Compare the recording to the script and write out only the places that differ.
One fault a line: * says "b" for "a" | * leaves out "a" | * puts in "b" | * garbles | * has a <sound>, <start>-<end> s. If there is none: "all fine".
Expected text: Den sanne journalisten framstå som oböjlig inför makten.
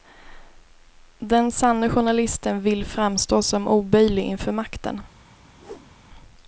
* puts in "vill"
* has a whoosh, 5.6-5.9 s